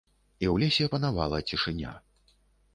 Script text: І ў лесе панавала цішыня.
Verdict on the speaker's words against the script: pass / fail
pass